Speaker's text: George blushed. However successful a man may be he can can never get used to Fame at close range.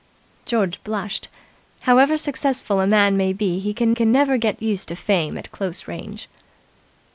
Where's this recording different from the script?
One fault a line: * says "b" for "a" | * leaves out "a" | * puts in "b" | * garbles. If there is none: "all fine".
all fine